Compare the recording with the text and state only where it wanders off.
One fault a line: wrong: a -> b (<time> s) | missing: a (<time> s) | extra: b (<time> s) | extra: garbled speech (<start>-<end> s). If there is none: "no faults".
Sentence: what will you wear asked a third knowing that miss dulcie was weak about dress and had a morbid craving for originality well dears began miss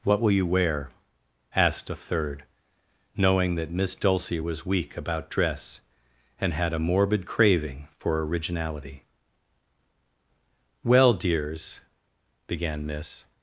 no faults